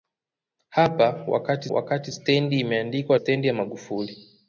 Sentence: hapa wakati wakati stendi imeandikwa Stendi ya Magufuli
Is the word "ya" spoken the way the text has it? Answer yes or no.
yes